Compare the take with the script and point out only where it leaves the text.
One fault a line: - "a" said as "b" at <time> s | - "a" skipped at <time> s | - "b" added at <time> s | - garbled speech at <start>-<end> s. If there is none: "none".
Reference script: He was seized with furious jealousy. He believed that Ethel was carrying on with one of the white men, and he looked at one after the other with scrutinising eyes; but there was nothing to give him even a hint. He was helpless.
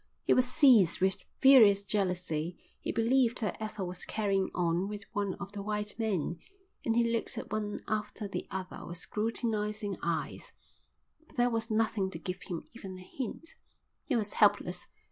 none